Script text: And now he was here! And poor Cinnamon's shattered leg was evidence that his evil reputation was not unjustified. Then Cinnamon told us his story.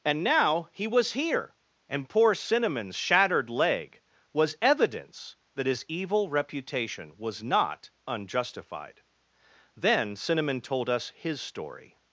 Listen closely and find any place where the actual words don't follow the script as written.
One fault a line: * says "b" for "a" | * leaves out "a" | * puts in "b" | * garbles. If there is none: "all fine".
all fine